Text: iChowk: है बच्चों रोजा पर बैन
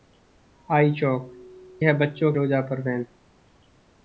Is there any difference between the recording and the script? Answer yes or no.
no